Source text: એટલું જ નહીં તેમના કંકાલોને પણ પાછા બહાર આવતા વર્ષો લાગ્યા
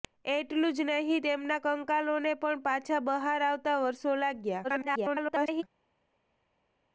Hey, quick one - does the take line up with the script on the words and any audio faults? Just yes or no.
no